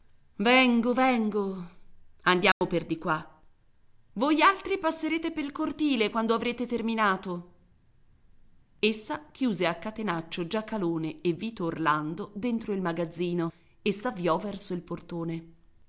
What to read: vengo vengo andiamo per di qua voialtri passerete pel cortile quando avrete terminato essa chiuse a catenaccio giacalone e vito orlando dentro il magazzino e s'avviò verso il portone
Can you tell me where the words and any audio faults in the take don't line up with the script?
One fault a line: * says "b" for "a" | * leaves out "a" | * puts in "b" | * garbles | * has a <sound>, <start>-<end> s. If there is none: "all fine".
* has a dropout, 2.5-2.6 s